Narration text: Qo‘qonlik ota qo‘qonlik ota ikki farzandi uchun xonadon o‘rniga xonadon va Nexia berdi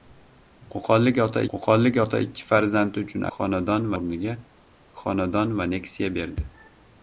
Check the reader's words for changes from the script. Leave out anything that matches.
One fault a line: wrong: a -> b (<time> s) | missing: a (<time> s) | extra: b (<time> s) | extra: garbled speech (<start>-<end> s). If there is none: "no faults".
no faults